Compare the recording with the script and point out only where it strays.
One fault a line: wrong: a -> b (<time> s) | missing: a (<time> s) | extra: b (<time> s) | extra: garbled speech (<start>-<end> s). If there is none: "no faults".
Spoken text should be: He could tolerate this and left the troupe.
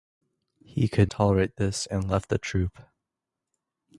no faults